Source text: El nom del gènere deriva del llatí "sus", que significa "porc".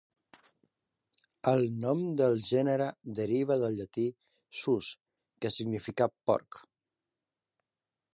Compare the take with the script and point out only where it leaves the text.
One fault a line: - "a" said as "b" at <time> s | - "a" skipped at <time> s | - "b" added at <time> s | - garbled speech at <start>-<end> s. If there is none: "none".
none